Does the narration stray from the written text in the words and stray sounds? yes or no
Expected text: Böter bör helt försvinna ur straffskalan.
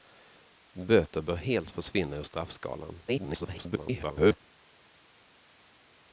yes